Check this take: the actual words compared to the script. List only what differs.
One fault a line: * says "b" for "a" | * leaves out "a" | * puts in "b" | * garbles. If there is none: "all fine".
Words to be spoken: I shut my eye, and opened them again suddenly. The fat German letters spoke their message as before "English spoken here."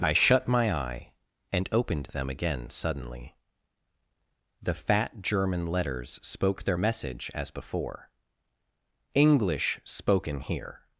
all fine